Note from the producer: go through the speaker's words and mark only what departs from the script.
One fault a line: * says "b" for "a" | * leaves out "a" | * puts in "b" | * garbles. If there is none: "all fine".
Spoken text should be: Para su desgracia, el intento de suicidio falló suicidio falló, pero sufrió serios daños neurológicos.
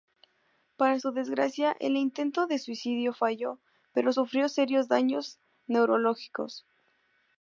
* leaves out "suicidio falló"